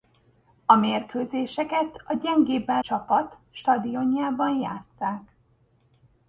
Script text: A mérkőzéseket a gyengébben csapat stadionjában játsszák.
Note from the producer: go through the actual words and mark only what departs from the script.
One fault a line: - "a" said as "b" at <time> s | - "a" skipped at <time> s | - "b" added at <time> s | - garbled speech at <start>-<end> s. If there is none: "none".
none